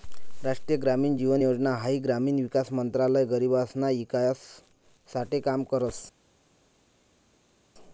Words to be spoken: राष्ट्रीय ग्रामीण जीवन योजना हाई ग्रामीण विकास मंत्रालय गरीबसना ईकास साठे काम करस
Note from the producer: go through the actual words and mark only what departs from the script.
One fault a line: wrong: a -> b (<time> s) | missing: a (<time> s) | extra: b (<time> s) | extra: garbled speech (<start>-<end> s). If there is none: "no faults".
no faults